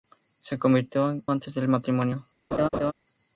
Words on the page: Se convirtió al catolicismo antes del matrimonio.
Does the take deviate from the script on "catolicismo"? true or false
true